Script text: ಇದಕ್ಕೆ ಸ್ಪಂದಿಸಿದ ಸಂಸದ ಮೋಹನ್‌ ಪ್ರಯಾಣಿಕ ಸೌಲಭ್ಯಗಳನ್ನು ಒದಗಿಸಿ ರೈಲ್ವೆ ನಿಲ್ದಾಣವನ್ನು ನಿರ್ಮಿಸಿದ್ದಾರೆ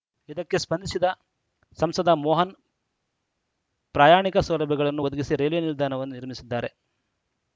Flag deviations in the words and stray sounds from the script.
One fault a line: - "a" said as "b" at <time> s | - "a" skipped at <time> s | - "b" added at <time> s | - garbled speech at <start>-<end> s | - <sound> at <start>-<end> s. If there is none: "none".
none